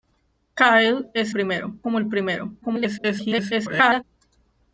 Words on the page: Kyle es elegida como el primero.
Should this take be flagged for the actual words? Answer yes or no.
yes